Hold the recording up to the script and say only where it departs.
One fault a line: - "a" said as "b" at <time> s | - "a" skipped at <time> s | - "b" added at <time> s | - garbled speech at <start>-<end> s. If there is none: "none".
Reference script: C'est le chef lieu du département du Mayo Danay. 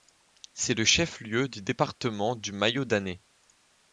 none